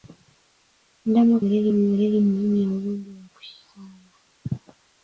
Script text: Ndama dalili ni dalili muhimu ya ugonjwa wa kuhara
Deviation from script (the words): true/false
false